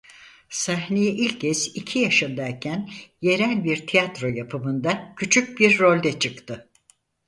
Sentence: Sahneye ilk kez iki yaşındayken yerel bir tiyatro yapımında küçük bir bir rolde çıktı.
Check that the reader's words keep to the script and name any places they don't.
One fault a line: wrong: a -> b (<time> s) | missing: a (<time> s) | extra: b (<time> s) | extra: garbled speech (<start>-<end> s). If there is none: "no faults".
missing: bir (5.8 s)